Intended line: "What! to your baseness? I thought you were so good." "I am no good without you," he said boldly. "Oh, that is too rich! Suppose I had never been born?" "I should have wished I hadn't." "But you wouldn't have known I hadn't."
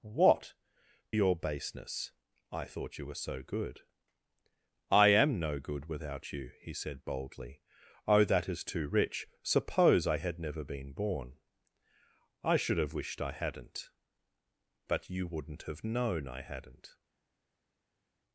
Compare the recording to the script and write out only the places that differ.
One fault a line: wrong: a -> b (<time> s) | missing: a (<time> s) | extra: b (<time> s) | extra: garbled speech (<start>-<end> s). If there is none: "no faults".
missing: to (0.5 s)